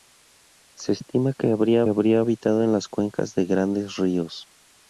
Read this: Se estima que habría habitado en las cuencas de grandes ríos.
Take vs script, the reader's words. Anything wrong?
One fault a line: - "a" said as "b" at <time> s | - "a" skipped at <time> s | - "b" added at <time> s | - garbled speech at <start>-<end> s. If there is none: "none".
- "habría" added at 1.9 s